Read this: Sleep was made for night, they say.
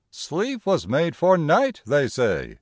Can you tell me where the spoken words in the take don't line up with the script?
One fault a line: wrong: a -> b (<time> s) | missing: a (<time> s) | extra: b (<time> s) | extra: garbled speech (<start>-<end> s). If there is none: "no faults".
no faults